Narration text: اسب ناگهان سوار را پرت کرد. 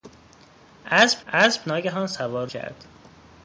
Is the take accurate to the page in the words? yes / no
no